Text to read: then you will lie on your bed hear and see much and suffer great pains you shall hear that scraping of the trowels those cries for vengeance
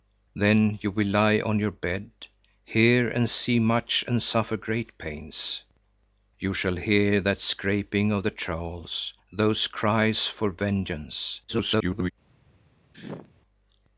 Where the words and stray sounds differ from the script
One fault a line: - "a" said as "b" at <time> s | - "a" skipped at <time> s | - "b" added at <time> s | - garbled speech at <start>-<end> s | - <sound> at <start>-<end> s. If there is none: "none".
- garbled speech at 11.5-12.1 s
- sneeze at 12.9-13.3 s